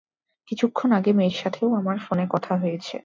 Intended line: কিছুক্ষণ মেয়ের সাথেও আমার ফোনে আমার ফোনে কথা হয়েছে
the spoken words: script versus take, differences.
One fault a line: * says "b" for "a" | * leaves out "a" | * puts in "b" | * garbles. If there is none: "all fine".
* puts in "আগে"
* leaves out "আমার ফোনে"